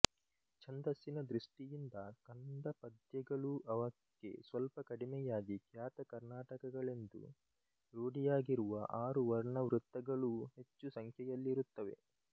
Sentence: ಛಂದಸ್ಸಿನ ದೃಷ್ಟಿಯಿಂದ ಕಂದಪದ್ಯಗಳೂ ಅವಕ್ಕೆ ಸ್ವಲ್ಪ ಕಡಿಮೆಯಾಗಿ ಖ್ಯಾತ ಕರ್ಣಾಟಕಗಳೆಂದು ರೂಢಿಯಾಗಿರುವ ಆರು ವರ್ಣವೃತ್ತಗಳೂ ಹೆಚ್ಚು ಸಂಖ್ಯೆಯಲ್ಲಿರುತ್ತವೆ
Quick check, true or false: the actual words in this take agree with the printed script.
true